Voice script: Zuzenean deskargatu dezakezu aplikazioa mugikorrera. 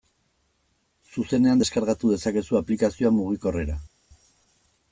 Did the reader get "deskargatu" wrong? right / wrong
right